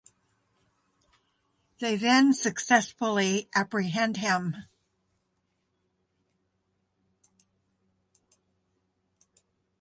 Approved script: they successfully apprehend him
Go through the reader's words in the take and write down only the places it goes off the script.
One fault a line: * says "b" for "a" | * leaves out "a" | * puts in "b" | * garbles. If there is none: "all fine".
* puts in "then"